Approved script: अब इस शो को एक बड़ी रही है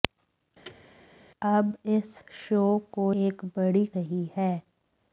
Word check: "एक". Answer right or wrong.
right